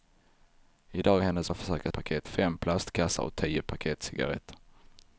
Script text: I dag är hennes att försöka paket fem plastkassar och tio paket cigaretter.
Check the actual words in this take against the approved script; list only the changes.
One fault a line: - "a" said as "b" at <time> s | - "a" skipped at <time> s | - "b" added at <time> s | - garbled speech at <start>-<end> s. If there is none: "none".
none